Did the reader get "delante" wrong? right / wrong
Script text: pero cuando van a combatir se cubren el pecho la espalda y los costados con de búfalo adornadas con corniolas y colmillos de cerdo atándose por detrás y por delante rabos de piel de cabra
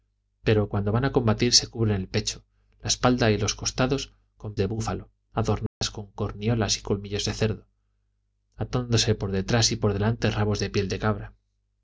right